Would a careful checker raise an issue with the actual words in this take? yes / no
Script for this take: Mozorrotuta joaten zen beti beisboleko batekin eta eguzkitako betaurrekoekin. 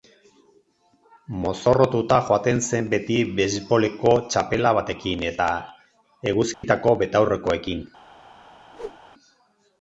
yes